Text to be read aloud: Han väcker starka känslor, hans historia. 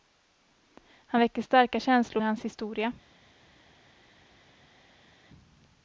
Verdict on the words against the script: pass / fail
pass